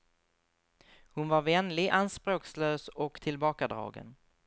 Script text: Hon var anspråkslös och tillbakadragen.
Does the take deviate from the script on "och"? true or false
false